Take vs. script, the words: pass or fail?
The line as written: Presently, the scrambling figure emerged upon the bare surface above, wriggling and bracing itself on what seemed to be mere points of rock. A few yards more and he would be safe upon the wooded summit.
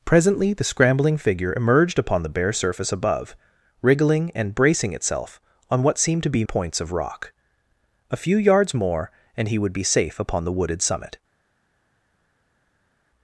fail